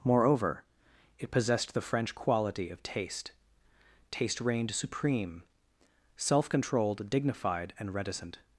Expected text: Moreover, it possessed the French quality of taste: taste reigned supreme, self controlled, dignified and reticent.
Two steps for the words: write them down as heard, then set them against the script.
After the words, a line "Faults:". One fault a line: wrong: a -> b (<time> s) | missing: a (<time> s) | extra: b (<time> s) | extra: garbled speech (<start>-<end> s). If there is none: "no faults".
Moreover, it possessed the French quality of taste: taste reigned supreme, self controlled, dignified and reticent.
Faults:
no faults